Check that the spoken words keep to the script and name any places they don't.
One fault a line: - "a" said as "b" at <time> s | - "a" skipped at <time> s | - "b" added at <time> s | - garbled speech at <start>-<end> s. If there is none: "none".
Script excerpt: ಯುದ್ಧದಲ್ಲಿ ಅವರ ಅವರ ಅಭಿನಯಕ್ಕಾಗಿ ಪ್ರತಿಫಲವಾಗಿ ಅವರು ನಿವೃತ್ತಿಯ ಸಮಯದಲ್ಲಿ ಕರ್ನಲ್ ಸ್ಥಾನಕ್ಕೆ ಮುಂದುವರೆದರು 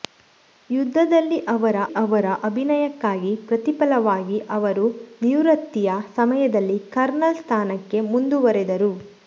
none